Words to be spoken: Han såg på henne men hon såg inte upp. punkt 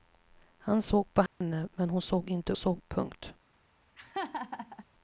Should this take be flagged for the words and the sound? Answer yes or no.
yes